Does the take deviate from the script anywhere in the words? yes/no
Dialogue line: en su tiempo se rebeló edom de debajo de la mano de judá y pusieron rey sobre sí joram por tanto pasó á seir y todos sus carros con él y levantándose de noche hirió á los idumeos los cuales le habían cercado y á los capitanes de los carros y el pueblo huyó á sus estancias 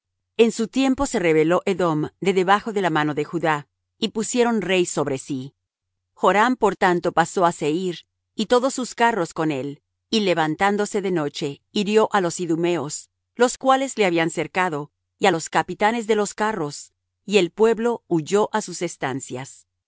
no